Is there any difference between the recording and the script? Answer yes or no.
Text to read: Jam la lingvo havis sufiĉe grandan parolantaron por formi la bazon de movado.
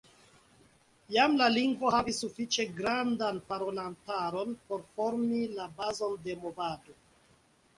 no